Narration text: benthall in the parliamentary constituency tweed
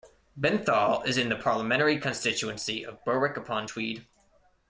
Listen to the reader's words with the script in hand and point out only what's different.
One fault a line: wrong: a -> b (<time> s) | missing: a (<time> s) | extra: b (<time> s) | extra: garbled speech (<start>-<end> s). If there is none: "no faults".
extra: is (1.1 s)
extra: of berwick upon (2.8 s)